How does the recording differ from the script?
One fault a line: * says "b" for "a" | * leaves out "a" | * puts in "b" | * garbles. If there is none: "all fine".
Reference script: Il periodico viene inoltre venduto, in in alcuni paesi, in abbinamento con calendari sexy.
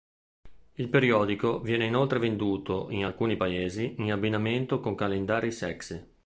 * leaves out "in"